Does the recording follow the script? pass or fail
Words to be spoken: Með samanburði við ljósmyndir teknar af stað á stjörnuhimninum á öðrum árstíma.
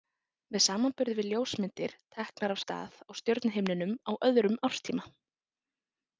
pass